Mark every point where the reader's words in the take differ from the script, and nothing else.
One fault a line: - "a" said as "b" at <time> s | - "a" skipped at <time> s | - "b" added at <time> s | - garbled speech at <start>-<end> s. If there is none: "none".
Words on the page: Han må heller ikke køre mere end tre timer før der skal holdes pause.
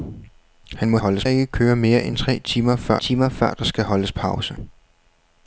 - "heller" said as "holdes" at 1.0 s
- "timer før" added at 3.0 s